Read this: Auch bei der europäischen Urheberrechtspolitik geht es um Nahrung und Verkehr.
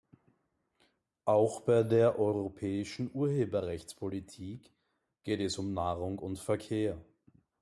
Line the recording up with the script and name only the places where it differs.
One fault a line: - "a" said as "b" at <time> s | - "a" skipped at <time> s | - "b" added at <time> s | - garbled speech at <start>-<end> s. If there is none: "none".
none